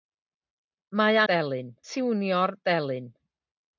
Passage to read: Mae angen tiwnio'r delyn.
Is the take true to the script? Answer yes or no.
no